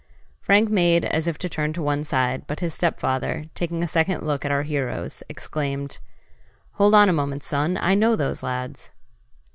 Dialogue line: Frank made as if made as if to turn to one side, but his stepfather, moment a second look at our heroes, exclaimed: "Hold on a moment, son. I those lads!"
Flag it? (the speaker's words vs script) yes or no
yes